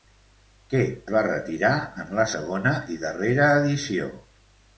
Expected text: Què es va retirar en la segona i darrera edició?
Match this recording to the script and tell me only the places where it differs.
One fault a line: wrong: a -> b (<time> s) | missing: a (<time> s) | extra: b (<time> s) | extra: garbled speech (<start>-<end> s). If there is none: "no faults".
missing: es (0.8 s)